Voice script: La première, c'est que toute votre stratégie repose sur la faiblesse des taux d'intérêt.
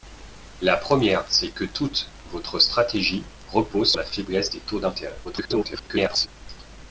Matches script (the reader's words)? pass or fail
fail